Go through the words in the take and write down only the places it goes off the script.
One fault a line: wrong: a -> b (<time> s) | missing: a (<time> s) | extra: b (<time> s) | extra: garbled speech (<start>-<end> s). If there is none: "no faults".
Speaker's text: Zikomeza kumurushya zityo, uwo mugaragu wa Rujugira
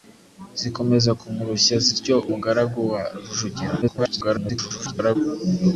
missing: uwo (2.1 s)
extra: garbled speech (3.8-5.2 s)